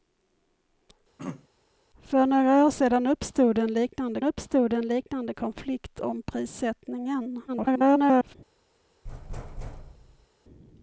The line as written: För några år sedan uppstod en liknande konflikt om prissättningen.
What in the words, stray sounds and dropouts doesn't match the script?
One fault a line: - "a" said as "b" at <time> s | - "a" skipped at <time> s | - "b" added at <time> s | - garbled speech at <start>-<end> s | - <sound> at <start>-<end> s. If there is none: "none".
- throat clearing at 1.2-1.5 s
- "uppstod en liknande" added at 4.2 s
- garbled speech at 7.5-8.4 s
- thud at 9.0-10.3 s